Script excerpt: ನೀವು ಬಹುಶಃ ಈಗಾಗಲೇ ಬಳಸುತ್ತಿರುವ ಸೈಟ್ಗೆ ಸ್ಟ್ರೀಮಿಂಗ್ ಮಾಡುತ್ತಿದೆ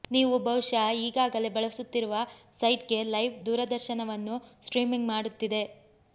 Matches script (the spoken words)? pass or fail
fail